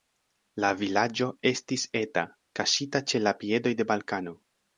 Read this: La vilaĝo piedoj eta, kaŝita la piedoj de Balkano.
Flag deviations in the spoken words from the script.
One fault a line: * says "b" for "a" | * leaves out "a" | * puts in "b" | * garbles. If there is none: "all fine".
* says "estis" for "piedoj"
* puts in "ĉe"